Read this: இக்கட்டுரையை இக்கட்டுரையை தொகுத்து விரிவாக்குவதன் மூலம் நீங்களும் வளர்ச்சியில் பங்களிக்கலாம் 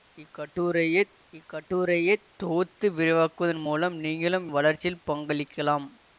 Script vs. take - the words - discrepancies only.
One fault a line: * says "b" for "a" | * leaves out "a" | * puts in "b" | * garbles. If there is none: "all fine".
all fine